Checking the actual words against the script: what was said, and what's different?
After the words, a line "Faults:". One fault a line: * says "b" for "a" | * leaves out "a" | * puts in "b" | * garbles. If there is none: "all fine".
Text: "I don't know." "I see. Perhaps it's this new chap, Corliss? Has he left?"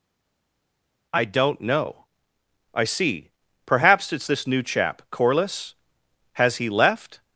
"I don't know." "I see. Perhaps it's this new chap, Corliss? Has he left?"
Faults:
all fine